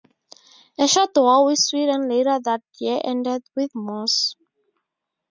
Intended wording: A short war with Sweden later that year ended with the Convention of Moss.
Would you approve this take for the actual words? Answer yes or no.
no